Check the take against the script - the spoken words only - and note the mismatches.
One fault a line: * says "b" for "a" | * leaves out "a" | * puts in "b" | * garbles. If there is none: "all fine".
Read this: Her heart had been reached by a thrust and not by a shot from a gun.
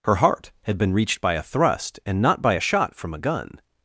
all fine